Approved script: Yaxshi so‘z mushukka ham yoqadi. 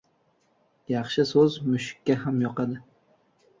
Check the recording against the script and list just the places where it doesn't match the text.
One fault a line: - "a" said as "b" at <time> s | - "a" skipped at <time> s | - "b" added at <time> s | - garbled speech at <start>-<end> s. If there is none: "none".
none